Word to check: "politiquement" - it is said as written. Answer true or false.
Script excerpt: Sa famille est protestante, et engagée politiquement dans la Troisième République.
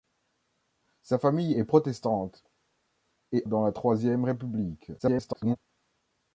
false